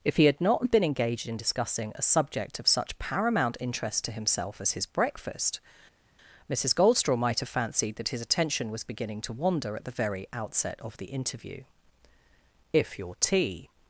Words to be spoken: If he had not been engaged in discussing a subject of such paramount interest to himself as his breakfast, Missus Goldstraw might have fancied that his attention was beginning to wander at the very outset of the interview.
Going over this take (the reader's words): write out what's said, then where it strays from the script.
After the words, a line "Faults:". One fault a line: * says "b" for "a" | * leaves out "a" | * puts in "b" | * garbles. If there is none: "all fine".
If he had not been engaged in discussing a subject of such paramount interest to himself as his breakfast, Missus Goldstraw might have fancied that his attention was beginning to wander at the very outset of the interview. "If your tea
Faults:
* puts in "If your tea"